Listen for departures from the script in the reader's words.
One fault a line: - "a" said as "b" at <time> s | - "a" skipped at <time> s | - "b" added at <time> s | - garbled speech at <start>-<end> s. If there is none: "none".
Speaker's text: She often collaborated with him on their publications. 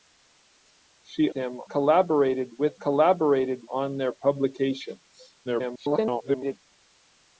- "often" said as "him" at 1.3 s
- "him" said as "collaborated" at 2.8 s
- garbled speech at 5.4-6.6 s